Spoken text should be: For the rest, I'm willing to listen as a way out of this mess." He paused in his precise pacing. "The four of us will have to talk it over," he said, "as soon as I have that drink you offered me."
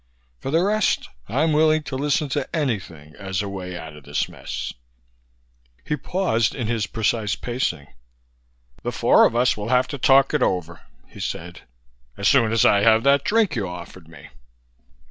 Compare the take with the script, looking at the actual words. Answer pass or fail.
fail